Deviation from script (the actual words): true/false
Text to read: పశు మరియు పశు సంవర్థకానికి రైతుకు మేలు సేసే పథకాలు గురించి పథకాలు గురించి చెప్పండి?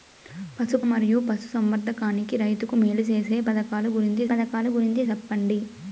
false